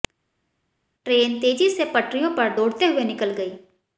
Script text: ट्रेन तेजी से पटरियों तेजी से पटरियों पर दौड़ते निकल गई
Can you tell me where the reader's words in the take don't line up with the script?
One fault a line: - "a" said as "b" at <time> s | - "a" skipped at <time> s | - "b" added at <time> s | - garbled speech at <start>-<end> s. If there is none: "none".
- "तेजी से पटरियों" skipped at 2.3 s
- "हुए" added at 2.8 s